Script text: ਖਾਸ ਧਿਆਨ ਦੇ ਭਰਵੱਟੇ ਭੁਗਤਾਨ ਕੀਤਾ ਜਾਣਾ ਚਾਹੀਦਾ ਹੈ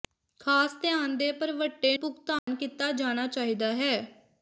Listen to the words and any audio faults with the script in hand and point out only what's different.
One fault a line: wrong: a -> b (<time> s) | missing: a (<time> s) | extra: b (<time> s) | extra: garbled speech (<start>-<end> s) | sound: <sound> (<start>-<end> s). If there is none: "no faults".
sound: dropout (2.4-2.5 s)